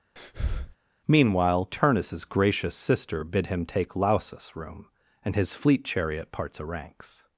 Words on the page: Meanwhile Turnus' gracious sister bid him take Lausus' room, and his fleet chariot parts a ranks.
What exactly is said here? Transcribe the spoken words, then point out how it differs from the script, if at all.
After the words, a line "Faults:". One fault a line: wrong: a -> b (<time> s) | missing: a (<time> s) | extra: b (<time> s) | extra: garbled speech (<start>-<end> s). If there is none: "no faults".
Meanwhile Turnus' gracious sister bid him take Lausus' room, and his fleet chariot parts a ranks.
Faults:
no faults